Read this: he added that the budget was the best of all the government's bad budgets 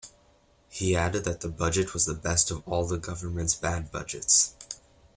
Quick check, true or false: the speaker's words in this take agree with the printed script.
true